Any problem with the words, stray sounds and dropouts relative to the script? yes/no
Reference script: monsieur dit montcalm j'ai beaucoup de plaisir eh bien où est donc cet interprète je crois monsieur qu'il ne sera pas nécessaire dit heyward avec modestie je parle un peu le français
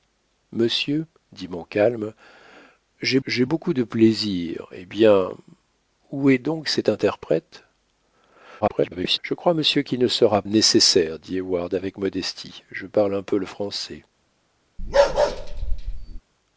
yes